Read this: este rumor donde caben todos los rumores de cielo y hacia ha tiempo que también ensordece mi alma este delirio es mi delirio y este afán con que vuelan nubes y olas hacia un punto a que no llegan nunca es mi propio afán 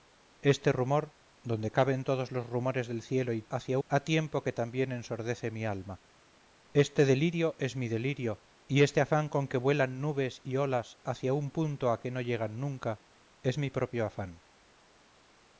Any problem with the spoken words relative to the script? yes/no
no